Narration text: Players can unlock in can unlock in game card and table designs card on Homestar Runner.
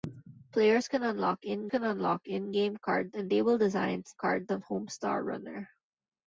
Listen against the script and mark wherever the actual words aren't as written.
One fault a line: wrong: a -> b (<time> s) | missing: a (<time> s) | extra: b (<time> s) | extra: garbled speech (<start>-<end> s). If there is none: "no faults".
no faults